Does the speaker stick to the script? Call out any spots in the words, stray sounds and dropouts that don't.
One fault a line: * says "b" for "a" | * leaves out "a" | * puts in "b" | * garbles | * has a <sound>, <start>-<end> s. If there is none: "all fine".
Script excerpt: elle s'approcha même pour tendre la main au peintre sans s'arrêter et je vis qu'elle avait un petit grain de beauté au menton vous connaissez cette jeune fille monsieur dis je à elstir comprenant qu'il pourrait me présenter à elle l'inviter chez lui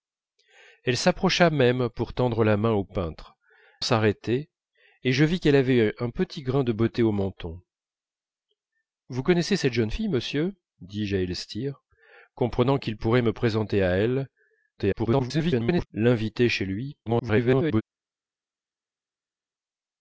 * leaves out "sans"
* garbles
* garbles